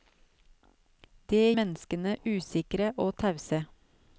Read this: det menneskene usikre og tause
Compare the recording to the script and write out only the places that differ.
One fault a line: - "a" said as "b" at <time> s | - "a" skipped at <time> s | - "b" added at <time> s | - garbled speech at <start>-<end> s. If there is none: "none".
none